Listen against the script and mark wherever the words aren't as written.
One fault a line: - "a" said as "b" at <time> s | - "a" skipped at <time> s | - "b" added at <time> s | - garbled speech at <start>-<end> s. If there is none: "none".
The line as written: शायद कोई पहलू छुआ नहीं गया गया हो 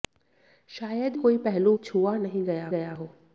none